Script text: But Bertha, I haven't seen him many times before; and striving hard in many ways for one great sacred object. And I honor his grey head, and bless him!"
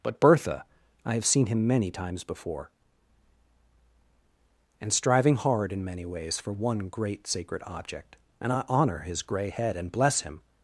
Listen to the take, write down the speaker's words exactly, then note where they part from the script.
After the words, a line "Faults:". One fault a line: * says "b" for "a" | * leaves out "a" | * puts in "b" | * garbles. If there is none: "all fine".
But Bertha, I have seen him many times before; and striving hard in many ways for one great sacred object. And I honor his grey head, and bless him!"
Faults:
* says "have" for "haven't"